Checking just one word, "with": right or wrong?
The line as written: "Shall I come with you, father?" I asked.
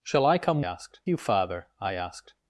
wrong